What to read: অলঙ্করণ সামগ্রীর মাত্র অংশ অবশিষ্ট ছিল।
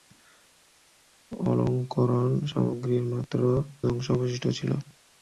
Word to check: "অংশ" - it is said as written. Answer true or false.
true